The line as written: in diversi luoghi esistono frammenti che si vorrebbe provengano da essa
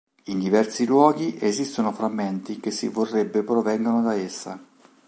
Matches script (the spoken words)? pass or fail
pass